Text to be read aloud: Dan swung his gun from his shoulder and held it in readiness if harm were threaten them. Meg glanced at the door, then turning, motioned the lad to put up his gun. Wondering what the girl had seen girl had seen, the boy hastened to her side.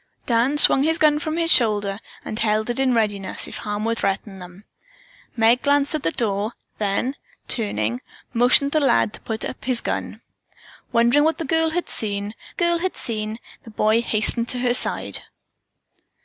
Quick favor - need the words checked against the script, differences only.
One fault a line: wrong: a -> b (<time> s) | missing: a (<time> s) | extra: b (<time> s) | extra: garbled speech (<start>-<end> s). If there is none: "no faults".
no faults